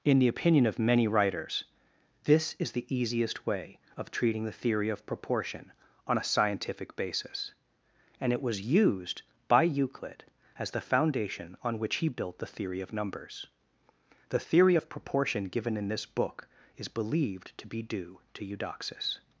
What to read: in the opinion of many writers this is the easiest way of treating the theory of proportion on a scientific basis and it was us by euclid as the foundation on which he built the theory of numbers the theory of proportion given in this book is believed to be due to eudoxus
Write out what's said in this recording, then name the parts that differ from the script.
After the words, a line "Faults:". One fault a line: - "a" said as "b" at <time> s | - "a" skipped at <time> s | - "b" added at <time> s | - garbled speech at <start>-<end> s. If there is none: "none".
in the opinion of many writers this is the easiest way of treating the theory of proportion on a scientific basis and it was used by euclid as the foundation on which he built the theory of numbers the theory of proportion given in this book is believed to be due to eudoxus
Faults:
- "us" said as "used" at 8.6 s